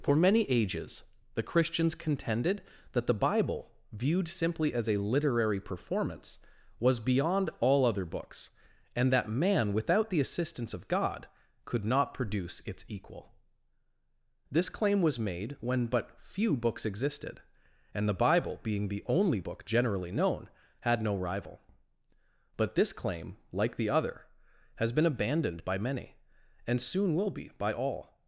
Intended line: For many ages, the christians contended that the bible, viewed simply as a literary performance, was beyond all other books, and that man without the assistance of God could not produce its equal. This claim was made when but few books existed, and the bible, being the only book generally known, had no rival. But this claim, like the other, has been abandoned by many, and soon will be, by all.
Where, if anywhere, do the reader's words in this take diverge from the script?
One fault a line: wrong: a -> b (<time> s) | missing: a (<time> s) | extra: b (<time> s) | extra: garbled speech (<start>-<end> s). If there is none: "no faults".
no faults